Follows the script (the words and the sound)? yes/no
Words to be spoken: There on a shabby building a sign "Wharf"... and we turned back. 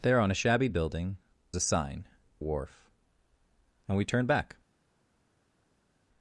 yes